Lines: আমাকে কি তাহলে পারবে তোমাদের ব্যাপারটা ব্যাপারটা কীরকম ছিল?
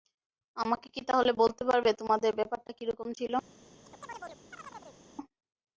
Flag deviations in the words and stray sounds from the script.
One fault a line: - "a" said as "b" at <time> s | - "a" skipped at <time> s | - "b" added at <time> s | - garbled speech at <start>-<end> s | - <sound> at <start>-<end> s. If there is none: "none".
- "বলতে" added at 1.4 s
- "ব্যাপারটা" skipped at 2.7 s
- chirp at 3.8-5.0 s